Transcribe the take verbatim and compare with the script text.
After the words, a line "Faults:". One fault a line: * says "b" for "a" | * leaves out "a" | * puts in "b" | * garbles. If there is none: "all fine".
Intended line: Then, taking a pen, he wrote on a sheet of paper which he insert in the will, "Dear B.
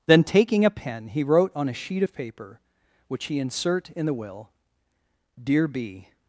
Then, taking a pen, he wrote on a sheet of paper which he insert in the will, "Dear B.
Faults:
all fine